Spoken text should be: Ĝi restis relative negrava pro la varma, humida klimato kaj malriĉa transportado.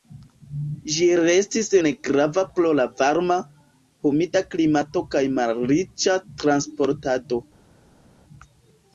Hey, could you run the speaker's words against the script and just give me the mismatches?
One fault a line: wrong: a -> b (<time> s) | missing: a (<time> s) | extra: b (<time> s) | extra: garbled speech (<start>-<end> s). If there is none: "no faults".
missing: relative (1.7 s)